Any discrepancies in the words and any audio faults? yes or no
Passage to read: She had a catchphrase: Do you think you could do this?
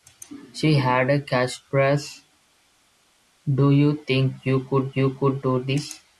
yes